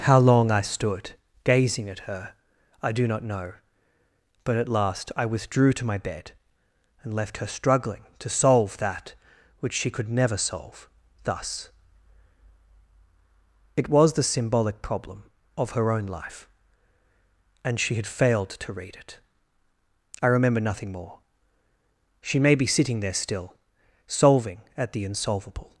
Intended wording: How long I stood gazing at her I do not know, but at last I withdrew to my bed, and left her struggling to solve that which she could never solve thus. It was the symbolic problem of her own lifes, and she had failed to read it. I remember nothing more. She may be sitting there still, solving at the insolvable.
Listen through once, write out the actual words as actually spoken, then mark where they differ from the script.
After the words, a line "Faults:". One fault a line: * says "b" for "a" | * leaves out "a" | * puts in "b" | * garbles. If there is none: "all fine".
How long I stood gazing at her I do not know, but at last I withdrew to my bed, and left her struggling to solve that which she could never solve thus. It was the symbolic problem of her own life, and she had failed to read it. I remember nothing more. She may be sitting there still, solving at the insolvable.
Faults:
* says "life" for "lifes"